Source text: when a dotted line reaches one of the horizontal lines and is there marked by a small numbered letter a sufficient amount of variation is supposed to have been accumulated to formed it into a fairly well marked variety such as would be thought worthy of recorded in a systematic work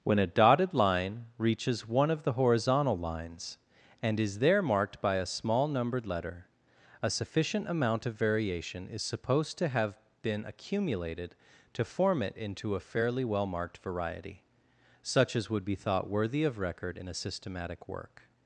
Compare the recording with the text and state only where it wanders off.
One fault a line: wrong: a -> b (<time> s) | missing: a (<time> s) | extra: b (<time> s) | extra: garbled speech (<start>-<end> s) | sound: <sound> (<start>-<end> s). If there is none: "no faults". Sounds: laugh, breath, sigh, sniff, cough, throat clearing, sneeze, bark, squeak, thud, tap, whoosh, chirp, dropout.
wrong: formed -> form (11.8 s)
wrong: recorded -> record (16.6 s)